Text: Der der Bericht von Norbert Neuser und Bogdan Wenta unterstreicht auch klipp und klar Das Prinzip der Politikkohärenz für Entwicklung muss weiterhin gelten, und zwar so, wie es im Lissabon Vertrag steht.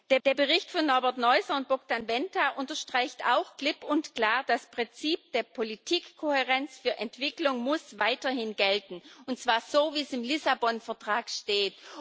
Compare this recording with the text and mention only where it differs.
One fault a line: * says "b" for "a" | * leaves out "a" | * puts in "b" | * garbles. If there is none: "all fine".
all fine